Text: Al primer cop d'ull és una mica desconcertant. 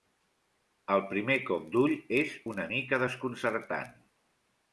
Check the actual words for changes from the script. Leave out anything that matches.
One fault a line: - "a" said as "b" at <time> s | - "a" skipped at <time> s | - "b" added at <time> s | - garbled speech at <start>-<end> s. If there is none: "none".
none